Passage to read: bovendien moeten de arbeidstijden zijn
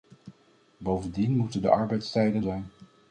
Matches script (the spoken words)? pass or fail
pass